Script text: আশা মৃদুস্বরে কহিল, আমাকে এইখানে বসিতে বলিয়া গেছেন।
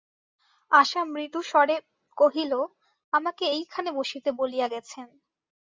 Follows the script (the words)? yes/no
yes